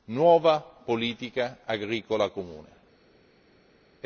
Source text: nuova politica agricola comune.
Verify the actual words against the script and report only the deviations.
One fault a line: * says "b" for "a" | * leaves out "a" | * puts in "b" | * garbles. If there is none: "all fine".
all fine